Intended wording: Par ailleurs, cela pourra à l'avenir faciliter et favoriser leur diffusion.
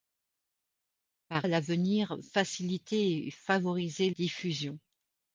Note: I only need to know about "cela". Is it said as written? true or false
false